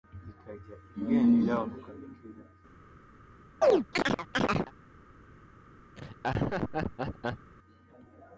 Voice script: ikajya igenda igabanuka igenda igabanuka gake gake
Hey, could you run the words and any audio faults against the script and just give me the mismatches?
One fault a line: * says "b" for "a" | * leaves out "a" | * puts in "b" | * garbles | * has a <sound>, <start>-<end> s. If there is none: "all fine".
* leaves out "igenda igabanuka"
* has a chirp, 3.6-4.7 s
* has a laugh, 5.9-7.5 s